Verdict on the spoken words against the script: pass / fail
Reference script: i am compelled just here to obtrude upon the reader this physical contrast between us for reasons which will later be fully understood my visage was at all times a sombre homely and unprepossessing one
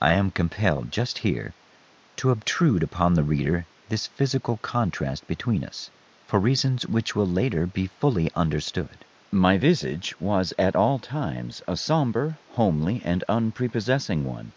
pass